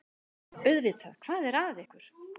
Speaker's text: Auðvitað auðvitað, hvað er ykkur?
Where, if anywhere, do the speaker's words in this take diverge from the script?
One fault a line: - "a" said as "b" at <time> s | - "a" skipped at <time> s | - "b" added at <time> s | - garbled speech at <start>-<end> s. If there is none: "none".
- "auðvitað" skipped at 1.2 s
- "að" added at 1.6 s